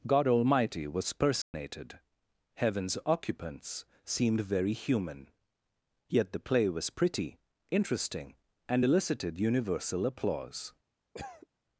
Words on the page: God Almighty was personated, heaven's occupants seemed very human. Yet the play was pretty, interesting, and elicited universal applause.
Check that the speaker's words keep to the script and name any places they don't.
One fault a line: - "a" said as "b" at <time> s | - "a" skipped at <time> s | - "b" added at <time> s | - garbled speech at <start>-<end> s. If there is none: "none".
none